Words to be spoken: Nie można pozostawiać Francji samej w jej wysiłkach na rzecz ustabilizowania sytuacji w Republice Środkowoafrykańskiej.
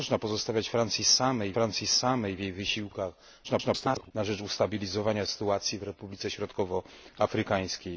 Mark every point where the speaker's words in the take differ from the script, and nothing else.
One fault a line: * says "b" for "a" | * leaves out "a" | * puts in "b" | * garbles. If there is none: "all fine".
* puts in "Francji samej"
* garbles